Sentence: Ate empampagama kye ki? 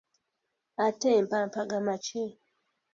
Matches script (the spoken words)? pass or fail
fail